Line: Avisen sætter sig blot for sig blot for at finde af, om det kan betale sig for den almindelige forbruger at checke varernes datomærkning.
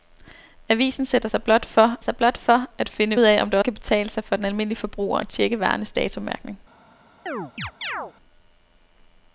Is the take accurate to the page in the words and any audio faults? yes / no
no